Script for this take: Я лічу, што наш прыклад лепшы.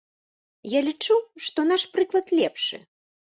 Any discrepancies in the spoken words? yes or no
no